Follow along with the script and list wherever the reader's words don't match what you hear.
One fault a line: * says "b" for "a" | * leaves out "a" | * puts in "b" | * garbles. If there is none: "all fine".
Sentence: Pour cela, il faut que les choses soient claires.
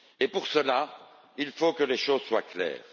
all fine